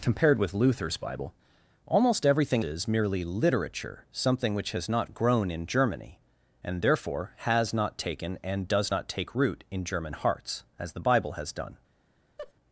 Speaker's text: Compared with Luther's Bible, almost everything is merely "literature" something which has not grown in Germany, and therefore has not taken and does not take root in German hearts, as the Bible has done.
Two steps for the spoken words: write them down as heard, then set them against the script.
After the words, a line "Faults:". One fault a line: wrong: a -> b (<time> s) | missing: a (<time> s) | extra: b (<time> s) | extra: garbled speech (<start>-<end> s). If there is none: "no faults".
Compared with Luther's Bible, almost everything is merely "literature" something which has not grown in Germany, and therefore has not taken and does not take root in German hearts, as the Bible has done.
Faults:
no faults